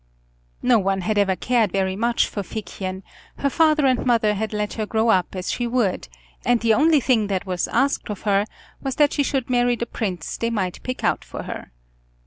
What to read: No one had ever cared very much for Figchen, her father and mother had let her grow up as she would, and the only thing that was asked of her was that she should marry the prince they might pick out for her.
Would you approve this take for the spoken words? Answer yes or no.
yes